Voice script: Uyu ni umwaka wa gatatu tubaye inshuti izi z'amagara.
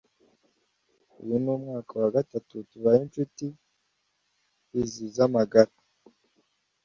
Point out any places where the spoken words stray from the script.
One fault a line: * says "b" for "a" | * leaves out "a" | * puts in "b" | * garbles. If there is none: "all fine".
all fine